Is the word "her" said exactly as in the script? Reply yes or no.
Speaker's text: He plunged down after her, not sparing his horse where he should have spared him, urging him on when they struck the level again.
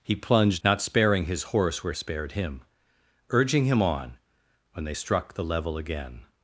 no